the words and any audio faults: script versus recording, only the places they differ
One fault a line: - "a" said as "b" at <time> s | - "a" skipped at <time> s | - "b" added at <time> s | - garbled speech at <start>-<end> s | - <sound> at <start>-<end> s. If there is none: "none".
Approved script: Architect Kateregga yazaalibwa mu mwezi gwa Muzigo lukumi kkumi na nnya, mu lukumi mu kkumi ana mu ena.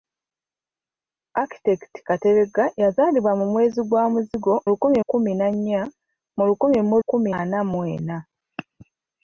none